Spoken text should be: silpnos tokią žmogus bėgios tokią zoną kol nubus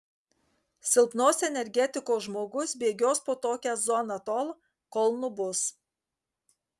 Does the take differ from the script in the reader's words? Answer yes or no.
yes